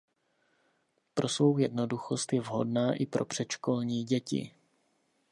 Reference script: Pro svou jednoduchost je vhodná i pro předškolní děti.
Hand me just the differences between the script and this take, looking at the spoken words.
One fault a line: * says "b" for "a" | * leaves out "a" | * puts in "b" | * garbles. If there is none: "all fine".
all fine